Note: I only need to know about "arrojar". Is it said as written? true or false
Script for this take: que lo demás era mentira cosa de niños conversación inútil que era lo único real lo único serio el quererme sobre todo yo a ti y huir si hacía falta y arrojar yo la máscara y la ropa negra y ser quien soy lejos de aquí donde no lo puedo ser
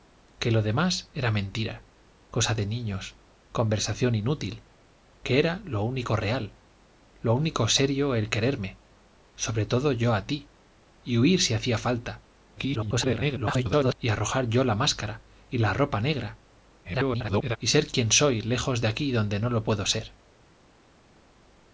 true